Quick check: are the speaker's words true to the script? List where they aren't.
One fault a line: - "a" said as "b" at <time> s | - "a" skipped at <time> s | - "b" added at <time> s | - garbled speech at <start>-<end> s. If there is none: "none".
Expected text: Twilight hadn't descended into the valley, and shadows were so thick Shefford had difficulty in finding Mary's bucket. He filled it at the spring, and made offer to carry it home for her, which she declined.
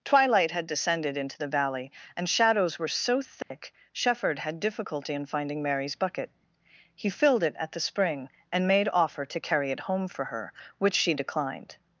- "hadn't" said as "had" at 0.5 s